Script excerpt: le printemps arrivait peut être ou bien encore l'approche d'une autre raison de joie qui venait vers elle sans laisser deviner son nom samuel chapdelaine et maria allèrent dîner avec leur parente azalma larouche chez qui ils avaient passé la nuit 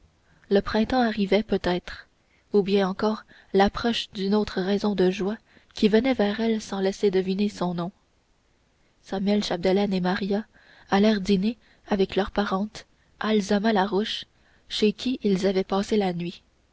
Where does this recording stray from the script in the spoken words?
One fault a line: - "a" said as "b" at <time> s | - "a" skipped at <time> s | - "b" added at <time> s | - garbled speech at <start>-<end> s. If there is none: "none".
none